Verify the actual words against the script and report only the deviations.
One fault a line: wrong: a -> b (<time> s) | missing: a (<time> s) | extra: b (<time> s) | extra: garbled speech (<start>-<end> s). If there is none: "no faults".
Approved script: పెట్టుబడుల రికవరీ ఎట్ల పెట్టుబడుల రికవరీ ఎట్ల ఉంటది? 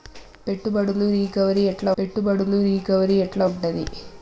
no faults